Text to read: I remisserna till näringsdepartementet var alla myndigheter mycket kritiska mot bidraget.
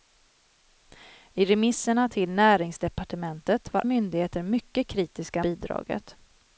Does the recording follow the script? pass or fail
fail